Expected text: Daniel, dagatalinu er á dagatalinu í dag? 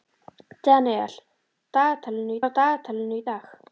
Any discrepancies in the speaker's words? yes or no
no